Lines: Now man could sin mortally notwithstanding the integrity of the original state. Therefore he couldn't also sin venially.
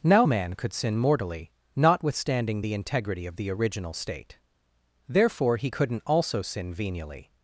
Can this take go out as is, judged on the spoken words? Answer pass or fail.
pass